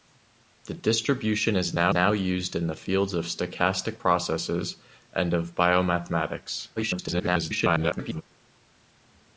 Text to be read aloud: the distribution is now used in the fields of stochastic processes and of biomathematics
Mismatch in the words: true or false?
true